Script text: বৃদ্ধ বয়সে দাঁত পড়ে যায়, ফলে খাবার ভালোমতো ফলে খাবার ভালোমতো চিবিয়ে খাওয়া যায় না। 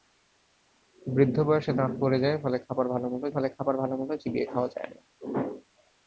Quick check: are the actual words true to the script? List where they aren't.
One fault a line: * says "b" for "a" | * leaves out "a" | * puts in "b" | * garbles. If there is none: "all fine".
all fine